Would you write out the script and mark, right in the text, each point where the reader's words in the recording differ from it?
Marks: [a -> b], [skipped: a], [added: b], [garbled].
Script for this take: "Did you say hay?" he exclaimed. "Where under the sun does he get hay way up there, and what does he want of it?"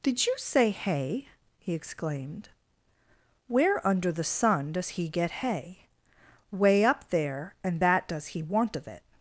"Did you say hay?" he exclaimed. "Where under the sun does he get hay way up there, and [what -> that] does he want of it?"